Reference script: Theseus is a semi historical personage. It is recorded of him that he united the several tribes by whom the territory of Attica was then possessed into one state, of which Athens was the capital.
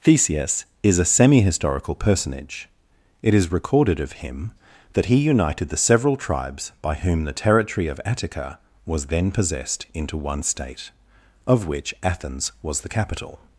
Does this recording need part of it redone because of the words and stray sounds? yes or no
no